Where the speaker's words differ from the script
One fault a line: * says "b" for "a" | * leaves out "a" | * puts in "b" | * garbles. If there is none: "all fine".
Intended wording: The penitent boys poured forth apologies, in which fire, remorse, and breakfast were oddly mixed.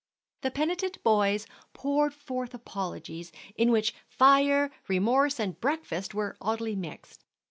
all fine